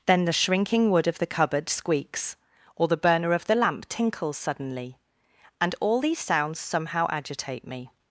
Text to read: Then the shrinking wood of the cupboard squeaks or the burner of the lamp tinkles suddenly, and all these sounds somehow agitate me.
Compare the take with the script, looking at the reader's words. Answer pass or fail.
pass